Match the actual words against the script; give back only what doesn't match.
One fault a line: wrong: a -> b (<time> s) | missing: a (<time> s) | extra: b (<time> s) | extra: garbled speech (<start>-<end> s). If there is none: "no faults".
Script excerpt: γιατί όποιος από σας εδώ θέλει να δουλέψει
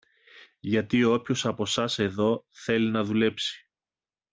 no faults